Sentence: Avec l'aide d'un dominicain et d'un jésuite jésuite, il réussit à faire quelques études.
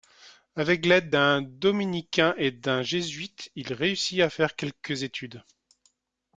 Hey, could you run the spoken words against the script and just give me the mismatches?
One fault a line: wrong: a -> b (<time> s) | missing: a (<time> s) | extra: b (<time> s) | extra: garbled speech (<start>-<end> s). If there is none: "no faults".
missing: jésuite (3.5 s)